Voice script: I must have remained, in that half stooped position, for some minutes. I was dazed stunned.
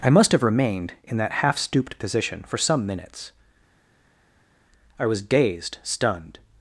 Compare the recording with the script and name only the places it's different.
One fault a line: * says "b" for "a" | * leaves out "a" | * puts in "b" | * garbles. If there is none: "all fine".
all fine